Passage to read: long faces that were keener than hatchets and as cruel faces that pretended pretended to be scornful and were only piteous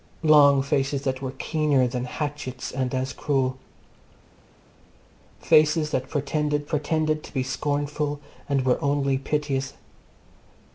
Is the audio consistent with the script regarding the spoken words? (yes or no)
yes